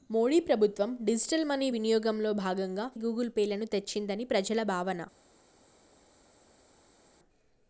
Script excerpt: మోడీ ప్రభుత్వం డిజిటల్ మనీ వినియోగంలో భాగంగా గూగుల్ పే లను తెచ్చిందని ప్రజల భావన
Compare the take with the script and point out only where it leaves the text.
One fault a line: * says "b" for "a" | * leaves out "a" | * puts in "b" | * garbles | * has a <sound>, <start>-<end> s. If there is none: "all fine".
all fine